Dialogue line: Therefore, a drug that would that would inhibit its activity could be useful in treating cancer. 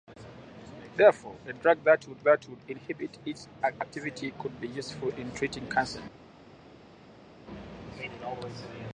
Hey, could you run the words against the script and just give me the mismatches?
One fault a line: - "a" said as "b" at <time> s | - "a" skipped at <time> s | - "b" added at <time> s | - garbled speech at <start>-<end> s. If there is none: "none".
none